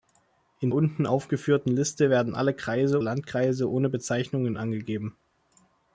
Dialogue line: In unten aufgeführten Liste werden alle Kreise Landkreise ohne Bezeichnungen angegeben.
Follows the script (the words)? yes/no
yes